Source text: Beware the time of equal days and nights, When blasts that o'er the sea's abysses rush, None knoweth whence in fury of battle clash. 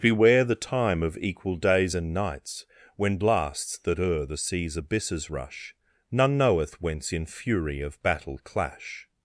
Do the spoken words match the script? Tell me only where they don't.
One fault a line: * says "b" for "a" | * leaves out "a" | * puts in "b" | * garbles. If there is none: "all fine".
all fine